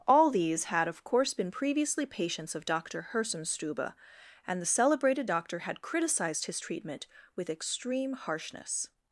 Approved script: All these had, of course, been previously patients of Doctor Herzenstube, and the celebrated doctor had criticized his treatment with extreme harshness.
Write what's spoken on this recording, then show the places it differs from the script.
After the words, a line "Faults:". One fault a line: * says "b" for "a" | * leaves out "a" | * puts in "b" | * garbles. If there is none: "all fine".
All these had, of course, been previously patients of Doctor Herzenstube, and the celebrated doctor had criticized his treatment with extreme harshness.
Faults:
all fine